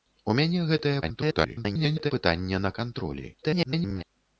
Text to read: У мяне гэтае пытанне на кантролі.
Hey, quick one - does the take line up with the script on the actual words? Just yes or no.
no